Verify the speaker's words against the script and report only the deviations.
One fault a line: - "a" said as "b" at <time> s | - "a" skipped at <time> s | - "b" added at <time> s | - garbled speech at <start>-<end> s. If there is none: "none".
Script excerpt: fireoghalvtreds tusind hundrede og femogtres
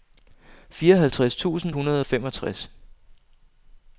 none